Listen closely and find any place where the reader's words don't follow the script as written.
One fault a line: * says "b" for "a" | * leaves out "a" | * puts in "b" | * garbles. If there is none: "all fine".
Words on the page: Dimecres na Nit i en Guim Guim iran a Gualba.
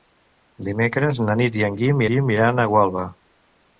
all fine